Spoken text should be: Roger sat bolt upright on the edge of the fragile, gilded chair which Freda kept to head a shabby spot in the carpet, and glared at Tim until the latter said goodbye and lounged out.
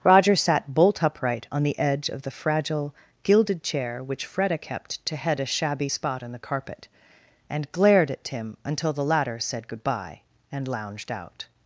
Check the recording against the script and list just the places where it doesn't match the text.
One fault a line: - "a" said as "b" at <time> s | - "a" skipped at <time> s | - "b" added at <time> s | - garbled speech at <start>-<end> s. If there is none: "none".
none